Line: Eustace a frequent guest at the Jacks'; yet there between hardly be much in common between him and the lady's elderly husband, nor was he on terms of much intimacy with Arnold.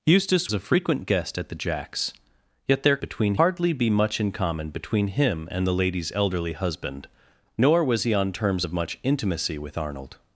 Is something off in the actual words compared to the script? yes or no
no